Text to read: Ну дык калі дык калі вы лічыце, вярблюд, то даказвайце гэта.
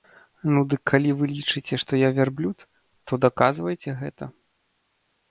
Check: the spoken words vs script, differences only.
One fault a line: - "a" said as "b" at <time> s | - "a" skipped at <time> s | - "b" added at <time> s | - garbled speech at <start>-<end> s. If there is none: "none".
- "дык калі вы лічыце" said as "вы лічыце што я" at 1.2 s